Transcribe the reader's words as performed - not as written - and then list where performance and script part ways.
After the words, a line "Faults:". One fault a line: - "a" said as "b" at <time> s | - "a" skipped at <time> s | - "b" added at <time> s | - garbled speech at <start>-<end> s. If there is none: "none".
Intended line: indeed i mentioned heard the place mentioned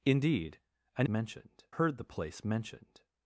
indeed i mentioned heard the place mentioned
Faults:
none